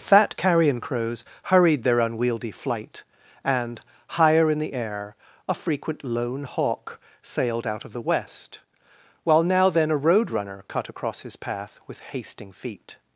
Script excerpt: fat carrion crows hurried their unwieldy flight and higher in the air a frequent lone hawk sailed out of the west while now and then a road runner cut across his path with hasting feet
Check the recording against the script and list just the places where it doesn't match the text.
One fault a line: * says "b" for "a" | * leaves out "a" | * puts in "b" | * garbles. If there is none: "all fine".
* leaves out "and"